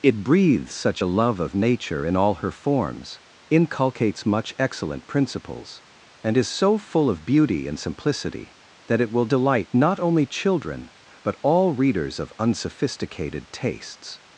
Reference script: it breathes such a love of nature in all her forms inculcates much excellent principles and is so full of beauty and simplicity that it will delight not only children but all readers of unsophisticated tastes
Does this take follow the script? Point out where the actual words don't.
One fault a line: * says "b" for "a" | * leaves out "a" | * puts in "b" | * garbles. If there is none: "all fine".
all fine